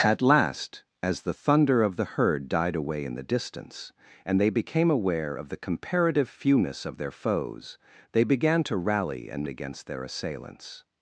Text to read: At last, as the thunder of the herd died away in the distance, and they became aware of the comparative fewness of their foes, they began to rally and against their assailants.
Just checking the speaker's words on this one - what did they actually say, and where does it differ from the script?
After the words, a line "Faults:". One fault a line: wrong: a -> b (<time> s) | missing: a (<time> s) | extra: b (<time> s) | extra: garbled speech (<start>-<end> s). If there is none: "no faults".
At last, as the thunder of the herd died away in the distance, and they became aware of the comparative fewness of their foes, they began to rally and against their assailants.
Faults:
no faults